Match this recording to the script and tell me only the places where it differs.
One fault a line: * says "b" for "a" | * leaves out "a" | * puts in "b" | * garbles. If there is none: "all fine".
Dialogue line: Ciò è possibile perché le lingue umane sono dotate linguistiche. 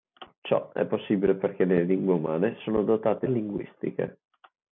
all fine